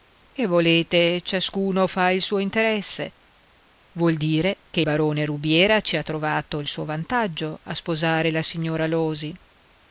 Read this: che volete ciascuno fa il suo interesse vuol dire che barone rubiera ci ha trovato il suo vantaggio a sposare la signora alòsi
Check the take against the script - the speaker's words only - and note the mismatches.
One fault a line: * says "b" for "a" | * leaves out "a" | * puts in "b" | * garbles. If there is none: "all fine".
all fine